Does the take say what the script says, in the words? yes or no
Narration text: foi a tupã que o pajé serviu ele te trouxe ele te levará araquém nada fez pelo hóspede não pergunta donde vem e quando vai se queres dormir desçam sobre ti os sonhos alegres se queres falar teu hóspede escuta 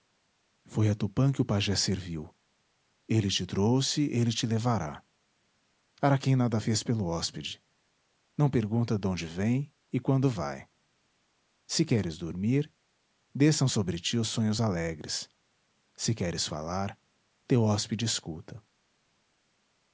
yes